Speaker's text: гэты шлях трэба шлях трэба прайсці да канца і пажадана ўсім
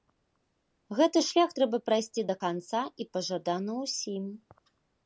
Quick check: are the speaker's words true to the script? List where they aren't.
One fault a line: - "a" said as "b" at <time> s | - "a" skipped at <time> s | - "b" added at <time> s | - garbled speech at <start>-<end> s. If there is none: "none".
- "шлях трэба" skipped at 1.8 s